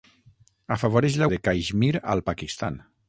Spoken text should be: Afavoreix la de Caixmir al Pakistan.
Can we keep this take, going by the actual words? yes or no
yes